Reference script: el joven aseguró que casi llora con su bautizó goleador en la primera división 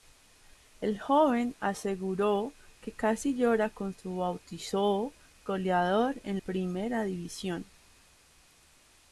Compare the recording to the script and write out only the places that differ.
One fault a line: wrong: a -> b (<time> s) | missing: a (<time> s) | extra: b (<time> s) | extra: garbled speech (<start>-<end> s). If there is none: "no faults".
missing: la (6.4 s)